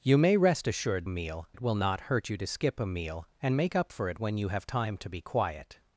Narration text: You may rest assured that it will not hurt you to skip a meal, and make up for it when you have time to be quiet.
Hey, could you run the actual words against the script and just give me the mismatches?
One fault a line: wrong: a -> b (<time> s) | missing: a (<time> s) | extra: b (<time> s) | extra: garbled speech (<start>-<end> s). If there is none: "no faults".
wrong: that -> meal (1.1 s)